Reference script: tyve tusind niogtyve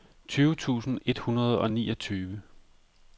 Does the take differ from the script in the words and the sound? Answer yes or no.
yes